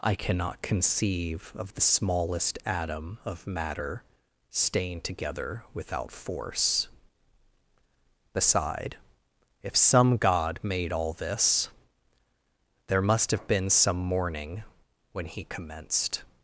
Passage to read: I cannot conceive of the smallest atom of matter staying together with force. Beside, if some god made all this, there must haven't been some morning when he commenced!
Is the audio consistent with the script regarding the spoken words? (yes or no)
no